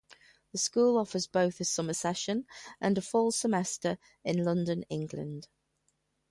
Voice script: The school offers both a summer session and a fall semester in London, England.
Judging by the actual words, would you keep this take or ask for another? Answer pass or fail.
pass